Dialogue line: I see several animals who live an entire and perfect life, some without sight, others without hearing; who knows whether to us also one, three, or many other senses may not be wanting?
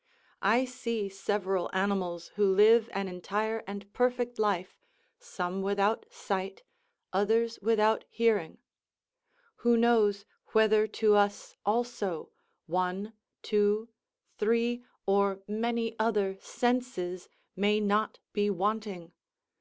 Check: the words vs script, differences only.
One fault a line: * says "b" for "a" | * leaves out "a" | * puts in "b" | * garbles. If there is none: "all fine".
* puts in "two"